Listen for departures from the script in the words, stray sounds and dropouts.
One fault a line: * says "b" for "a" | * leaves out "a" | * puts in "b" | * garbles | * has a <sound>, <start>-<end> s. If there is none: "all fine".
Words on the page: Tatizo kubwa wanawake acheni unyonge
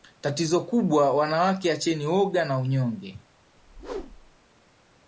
* puts in "woga na"
* has a whoosh, 3.6-4.4 s